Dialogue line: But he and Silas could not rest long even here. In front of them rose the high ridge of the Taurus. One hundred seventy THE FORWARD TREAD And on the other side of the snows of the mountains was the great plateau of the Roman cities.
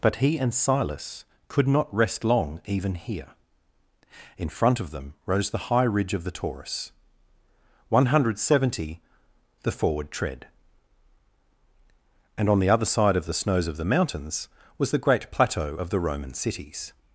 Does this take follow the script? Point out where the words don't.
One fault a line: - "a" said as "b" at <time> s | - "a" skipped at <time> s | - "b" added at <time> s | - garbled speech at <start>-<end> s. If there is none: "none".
none